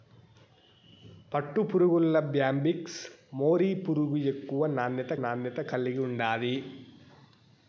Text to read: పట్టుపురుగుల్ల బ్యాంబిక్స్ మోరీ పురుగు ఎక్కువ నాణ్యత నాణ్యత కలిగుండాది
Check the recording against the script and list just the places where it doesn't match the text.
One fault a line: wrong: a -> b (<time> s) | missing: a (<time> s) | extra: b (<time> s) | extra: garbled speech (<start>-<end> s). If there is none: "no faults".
no faults